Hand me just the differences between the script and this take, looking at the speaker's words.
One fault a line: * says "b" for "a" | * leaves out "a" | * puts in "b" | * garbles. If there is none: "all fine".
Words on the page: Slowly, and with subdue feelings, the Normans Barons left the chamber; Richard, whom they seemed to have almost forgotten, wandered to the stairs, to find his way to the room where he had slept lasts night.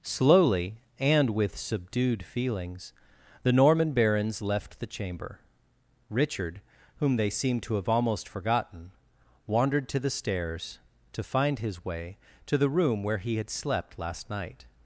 * says "subdued" for "subdue"
* says "Norman" for "Normans"
* says "last" for "lasts"